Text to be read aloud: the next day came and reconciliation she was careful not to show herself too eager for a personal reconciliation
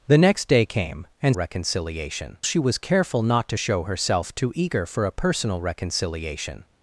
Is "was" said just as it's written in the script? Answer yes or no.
yes